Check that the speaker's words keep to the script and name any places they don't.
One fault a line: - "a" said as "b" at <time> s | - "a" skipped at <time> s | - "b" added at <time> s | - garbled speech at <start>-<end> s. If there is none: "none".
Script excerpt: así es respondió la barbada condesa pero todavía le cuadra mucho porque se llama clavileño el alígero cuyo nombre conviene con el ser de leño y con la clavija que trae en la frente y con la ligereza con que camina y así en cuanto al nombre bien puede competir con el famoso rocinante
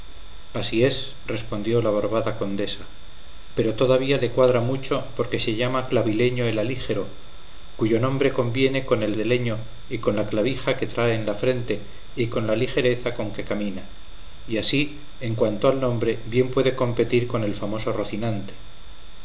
- "ser" skipped at 9.2 s